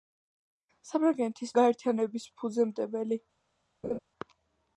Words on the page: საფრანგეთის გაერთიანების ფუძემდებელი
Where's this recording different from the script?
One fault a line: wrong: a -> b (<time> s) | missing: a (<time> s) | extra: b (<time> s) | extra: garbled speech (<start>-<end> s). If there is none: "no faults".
no faults